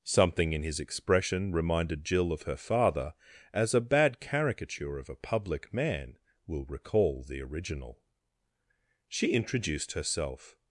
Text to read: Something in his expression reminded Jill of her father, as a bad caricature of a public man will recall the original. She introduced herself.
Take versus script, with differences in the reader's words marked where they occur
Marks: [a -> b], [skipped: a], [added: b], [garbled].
Something in his expression reminded Jill of her father, as a bad caricature of a public man will recall the original. She introduced herself.